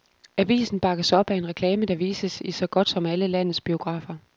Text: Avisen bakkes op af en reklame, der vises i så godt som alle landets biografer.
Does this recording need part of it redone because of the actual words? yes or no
no